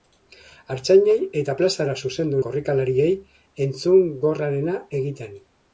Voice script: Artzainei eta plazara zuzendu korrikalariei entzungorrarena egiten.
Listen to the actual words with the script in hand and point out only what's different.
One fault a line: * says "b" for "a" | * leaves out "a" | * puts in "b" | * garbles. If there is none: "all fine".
all fine